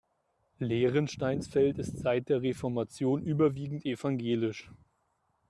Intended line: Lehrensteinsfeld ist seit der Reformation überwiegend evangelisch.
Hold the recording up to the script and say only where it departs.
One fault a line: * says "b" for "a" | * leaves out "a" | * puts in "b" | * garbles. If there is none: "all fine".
all fine